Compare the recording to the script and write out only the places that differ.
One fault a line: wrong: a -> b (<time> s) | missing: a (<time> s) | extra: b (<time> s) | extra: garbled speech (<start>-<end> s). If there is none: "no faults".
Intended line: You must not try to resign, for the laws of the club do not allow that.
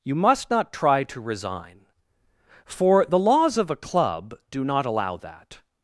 wrong: the -> a (3.7 s)